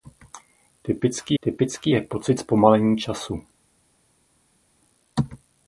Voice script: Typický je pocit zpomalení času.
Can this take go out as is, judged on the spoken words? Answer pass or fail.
fail